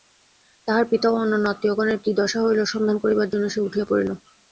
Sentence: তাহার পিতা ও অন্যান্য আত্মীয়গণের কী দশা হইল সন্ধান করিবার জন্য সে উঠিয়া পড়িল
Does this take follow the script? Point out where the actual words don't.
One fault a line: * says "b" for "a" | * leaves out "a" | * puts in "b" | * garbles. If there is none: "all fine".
all fine